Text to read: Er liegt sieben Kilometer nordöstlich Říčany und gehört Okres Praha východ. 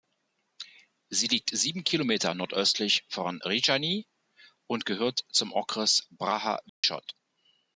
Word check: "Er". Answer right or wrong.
wrong